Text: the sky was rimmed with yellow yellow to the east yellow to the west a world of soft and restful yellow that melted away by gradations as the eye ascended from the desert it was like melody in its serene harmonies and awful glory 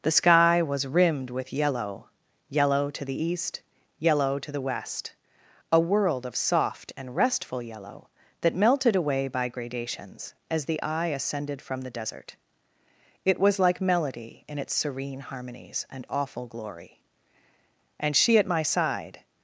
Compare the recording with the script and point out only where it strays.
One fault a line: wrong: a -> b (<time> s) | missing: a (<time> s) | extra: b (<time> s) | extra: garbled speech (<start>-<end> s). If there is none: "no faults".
extra: and she at my side (18.0 s)